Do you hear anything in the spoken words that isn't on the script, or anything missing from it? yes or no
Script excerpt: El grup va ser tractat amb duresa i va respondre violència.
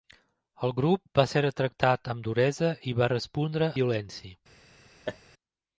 no